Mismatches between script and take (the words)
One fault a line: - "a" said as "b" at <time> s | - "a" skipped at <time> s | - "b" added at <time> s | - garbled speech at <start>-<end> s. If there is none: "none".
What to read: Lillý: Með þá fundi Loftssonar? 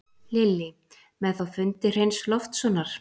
- "Hreins" added at 1.9 s